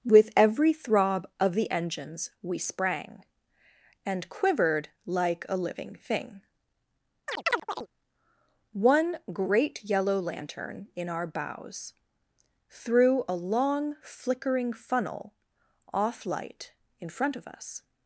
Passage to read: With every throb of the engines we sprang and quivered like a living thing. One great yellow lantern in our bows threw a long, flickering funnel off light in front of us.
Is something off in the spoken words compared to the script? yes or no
no